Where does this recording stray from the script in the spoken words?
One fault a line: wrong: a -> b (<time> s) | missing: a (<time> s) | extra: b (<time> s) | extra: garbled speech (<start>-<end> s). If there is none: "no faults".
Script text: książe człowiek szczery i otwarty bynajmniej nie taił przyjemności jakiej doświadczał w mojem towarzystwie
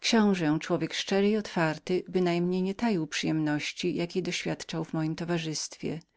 no faults